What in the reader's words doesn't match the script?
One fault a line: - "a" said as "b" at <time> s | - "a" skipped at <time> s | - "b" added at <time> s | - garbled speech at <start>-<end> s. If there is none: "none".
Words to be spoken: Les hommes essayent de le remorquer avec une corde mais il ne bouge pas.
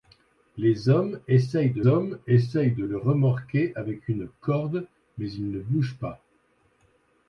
- "hommes essayent de" added at 1.9 s